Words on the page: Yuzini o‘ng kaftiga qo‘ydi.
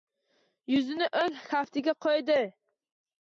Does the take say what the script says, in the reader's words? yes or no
yes